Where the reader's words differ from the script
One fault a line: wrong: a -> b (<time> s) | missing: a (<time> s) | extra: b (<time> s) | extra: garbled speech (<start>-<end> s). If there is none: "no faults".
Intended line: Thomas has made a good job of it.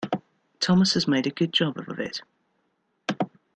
extra: of (1.9 s)